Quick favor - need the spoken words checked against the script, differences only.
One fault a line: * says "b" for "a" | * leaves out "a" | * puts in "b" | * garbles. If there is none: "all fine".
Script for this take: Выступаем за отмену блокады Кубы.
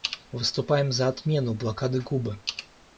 all fine